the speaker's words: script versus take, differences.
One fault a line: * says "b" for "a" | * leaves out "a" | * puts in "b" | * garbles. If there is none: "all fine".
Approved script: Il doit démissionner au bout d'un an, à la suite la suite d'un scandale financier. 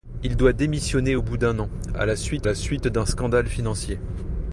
all fine